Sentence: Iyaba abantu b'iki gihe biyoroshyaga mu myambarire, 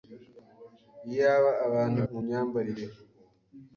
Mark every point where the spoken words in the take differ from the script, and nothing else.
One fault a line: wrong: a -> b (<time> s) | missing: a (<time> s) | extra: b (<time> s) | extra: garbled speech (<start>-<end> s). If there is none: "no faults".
missing: b'iki gihe biyoroshyaga (2.0 s)